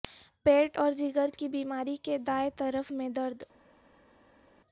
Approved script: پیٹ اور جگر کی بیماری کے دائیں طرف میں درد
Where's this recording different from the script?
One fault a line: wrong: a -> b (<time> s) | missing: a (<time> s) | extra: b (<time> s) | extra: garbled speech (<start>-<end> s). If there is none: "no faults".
no faults